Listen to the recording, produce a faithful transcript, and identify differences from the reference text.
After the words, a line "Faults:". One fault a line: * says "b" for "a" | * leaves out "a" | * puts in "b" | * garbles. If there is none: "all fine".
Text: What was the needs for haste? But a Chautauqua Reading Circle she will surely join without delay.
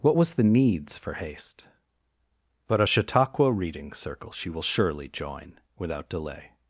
What was the needs for haste? But a Chautauqua Reading Circle she will surely join without delay.
Faults:
all fine